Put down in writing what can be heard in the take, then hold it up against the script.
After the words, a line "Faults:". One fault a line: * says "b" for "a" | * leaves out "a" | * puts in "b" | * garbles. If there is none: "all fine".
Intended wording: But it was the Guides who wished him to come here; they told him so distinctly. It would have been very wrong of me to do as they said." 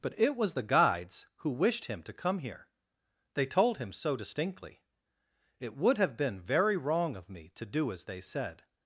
But it was the Guides who wished him to come here; they told him so distinctly. It would have been very wrong of me to do as they said."
Faults:
all fine